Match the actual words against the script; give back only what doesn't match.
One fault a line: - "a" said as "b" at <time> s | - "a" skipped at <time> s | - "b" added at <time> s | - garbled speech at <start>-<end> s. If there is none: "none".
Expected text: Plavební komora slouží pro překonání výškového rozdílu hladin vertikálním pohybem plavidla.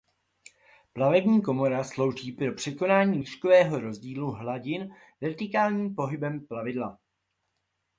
none